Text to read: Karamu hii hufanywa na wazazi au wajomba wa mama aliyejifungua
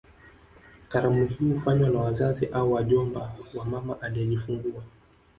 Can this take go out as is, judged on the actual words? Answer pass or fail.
pass